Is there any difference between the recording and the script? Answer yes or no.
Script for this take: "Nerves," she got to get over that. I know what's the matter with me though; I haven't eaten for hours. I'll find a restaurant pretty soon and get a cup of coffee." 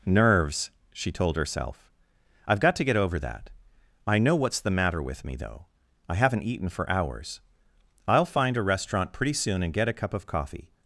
yes